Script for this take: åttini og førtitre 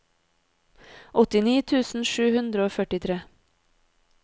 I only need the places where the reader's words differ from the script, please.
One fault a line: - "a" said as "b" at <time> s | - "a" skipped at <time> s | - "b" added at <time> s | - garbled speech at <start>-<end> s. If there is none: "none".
- "tusen sju hundre" added at 1.7 s